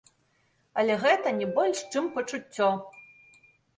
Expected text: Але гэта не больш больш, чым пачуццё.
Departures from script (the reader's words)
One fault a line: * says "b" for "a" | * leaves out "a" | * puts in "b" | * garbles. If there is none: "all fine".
* leaves out "больш"